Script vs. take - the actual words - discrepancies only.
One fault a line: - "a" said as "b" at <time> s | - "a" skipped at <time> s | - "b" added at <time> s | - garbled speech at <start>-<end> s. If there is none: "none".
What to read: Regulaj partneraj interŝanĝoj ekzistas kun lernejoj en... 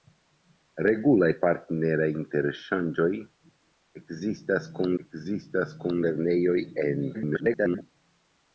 - "ekzistas kun" added at 5.0 s
- garbled speech at 7.1-7.8 s